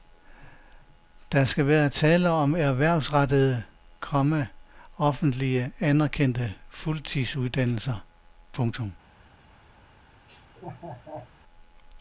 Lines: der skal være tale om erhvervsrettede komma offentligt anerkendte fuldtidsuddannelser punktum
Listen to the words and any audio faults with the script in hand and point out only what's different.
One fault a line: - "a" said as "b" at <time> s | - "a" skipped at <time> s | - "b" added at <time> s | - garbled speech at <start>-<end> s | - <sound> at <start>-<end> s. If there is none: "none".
- laugh at 10.3-11.3 s